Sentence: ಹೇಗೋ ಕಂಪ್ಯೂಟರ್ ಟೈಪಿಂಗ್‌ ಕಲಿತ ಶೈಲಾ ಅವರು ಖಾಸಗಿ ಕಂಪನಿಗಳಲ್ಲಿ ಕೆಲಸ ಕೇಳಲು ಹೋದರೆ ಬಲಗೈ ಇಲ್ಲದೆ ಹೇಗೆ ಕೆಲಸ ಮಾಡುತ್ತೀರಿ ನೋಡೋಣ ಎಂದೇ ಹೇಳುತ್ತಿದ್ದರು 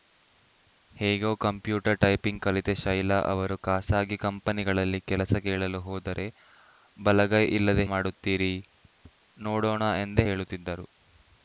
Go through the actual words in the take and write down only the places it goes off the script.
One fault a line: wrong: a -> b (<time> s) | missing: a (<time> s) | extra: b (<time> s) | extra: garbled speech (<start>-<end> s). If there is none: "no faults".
missing: ಹೇಗೆ ಕೆಲಸ (7.8 s)